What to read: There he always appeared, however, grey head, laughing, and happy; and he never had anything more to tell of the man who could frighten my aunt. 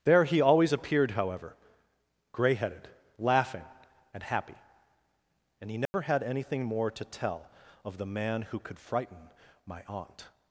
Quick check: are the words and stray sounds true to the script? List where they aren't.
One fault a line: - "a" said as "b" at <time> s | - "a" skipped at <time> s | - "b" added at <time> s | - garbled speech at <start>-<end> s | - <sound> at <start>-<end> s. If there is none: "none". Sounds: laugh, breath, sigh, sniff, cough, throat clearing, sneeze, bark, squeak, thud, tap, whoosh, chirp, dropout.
- "head" said as "headed" at 2.5 s
- dropout at 5.9-5.9 s